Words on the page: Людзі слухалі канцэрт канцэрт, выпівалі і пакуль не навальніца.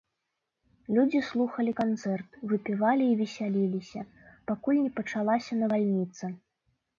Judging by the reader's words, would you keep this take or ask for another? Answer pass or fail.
fail